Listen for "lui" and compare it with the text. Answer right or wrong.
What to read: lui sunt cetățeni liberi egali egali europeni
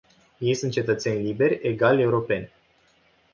wrong